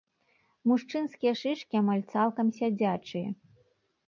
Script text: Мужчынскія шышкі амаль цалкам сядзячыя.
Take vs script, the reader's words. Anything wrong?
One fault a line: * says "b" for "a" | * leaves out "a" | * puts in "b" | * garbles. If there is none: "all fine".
all fine